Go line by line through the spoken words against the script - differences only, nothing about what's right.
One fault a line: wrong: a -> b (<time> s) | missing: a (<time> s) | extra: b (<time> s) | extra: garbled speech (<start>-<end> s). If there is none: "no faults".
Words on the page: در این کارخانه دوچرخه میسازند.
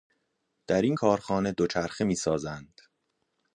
no faults